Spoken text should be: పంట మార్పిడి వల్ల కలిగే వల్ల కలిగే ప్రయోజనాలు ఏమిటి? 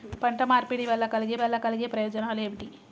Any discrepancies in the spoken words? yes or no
no